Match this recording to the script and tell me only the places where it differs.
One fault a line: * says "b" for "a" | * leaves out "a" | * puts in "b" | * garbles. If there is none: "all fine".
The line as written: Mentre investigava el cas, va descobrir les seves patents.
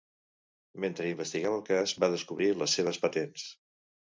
all fine